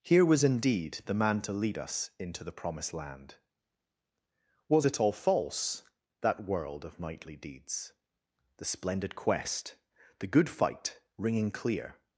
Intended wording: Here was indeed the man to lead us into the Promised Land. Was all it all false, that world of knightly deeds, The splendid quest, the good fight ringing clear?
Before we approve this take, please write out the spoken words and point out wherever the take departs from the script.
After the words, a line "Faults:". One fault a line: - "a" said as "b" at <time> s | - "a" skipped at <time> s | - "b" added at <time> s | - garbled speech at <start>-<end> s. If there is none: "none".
Here was indeed the man to lead us into the Promised Land. Was it all false, that world of knightly deeds, The splendid quest, the good fight ringing clear?
Faults:
- "all" skipped at 4.9 s